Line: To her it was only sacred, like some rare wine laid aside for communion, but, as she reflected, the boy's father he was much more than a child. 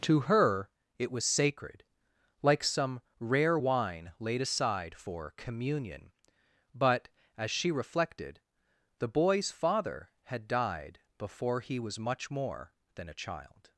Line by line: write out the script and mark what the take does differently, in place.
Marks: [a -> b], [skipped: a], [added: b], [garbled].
To her it was [skipped: only] sacred, like some rare wine laid aside for communion, but, as she reflected, the boy's father [added: had died before] he was much more than a child.